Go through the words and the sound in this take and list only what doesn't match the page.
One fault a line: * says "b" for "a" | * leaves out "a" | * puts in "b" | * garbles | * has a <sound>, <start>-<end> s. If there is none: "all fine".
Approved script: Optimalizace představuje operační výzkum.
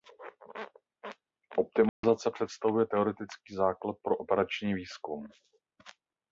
* has a dropout, 1.9-2.0 s
* puts in "teoretický základ pro"